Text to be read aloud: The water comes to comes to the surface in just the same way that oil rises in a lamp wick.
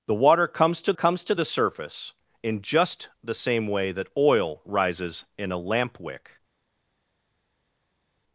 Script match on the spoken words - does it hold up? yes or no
yes